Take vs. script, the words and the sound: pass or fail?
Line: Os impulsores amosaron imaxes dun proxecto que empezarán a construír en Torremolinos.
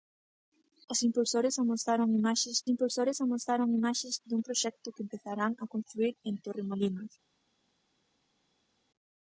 fail